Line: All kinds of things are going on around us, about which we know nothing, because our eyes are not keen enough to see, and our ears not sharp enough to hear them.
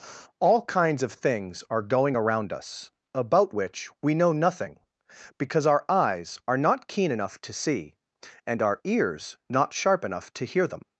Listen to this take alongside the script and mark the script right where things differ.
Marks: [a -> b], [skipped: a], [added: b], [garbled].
All kinds of things are going [skipped: on] around us, about which we know nothing, because our eyes are not keen enough to see, and our ears not sharp enough to hear them.